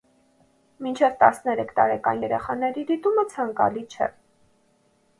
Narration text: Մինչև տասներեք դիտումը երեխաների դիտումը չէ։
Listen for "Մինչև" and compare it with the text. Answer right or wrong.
right